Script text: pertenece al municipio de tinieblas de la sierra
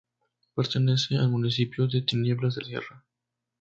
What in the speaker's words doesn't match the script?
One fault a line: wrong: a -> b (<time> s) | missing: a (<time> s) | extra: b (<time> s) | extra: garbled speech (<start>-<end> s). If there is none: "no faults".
missing: la (2.6 s)